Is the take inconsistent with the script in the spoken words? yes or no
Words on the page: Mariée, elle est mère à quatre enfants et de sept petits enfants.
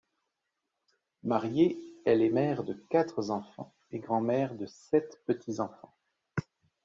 yes